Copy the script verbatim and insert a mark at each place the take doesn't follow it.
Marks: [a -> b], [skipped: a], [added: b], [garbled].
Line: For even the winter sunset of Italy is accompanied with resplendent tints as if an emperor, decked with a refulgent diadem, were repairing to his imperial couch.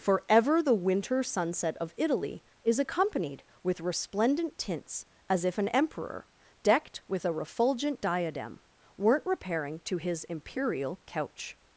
For [even -> ever] the winter sunset of Italy is accompanied with resplendent tints as if an emperor, decked with a refulgent diadem, [were -> weren't] repairing to his imperial couch.